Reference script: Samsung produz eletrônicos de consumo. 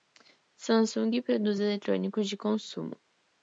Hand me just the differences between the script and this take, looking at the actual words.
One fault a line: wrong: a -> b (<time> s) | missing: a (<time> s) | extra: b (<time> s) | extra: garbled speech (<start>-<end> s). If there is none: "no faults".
no faults